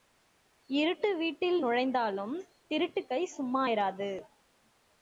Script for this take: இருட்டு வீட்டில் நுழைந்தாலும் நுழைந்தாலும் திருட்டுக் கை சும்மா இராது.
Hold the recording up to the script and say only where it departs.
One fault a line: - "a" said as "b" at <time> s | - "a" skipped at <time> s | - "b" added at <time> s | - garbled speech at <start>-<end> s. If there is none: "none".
- "நுழைந்தாலும்" skipped at 2.4 s